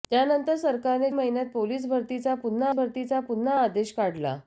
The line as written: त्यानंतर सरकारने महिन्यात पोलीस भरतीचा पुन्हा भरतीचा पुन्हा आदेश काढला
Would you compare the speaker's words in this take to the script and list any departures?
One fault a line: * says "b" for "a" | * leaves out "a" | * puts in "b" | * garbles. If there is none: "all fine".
all fine